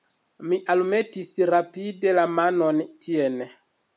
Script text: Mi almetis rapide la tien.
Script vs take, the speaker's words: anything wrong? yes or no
yes